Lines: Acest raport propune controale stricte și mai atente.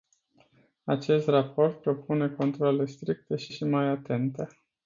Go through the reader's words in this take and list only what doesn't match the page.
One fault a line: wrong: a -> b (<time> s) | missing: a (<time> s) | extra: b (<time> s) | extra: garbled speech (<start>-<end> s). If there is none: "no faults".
extra: și (3.5 s)